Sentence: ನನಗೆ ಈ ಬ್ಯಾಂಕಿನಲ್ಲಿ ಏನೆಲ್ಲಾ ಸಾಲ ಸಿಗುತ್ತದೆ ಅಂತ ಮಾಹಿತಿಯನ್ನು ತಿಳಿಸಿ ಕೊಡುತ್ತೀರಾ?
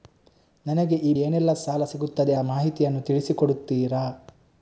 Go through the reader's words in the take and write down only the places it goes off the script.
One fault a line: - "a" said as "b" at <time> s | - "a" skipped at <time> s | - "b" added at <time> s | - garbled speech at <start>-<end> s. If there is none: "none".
- "ಬ್ಯಾಂಕಿನಲ್ಲಿ" skipped at 1.1 s
- "ಅಂತ" skipped at 2.3 s